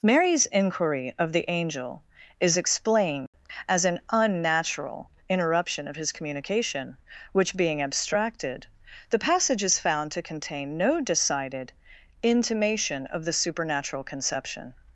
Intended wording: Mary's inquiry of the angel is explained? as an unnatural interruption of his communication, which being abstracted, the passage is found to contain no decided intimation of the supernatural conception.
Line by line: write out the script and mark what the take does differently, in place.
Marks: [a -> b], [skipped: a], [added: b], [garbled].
Mary's inquiry of the angel is explained? as an unnatural interruption of his communication, which being abstracted, the passage is found to contain no decided intimation of the supernatural conception.